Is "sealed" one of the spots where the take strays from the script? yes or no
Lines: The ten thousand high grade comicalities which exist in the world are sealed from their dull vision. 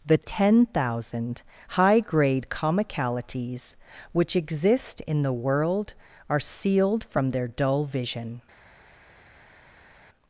no